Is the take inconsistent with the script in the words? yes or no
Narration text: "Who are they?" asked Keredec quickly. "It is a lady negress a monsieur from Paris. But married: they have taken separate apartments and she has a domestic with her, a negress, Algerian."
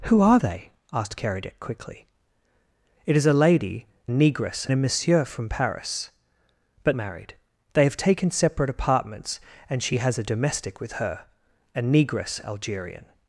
no